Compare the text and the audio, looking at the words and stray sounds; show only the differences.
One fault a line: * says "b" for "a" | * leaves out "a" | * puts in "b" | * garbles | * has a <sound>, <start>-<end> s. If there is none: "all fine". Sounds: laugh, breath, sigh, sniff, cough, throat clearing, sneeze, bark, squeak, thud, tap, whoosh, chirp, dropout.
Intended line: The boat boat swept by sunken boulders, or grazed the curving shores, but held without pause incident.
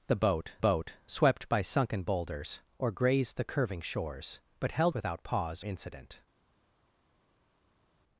all fine